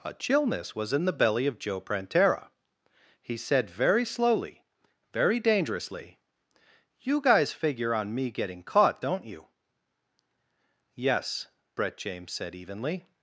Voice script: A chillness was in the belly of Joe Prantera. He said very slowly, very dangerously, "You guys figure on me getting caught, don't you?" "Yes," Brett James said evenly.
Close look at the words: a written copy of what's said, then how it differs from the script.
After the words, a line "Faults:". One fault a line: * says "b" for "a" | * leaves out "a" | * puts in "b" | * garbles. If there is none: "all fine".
A chillness was in the belly of Joe Prantera. He said very slowly, very dangerously, "You guys figure on me getting caught, don't you?" "Yes," Brett James said evenly.
Faults:
all fine